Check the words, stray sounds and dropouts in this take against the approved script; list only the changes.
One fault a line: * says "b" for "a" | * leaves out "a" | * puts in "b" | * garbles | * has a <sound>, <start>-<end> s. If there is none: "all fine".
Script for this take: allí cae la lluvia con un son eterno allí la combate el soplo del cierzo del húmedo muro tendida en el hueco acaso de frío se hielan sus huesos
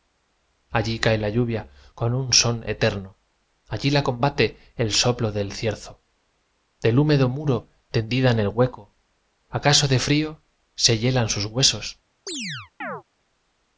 * has a chirp, 12.3-13.0 s